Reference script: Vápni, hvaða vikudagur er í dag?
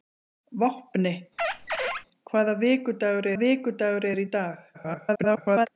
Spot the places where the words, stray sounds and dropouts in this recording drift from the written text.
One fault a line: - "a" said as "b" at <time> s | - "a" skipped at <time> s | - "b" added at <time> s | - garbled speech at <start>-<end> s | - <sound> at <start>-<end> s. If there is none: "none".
- squeak at 1.4-2.1 s
- "vikudagur" added at 3.4 s
- garbled speech at 4.7-5.7 s